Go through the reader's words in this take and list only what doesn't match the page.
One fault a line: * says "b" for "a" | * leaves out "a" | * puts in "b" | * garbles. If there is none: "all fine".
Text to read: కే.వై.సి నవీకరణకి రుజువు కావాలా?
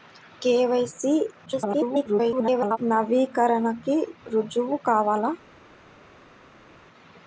* garbles